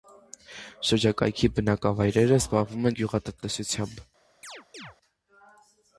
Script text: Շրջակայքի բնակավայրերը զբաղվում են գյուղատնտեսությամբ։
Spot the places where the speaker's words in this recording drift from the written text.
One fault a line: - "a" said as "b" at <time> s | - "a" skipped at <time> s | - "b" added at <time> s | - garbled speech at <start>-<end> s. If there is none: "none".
none